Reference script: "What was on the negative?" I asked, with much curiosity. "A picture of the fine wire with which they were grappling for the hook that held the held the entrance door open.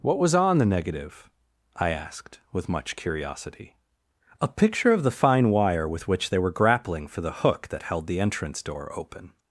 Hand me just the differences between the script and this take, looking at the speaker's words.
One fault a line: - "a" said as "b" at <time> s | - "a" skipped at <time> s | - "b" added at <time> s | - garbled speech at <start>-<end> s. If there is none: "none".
- "held the" skipped at 8.2 s